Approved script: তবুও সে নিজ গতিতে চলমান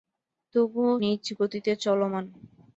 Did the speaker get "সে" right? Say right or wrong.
wrong